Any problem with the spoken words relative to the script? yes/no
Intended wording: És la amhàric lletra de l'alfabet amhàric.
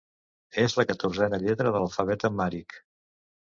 yes